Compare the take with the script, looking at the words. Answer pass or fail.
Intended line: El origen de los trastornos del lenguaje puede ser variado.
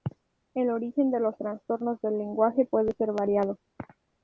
pass